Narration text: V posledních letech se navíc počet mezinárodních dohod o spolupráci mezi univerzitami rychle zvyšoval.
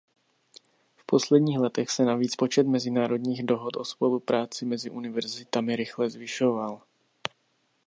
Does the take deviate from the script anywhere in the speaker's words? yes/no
no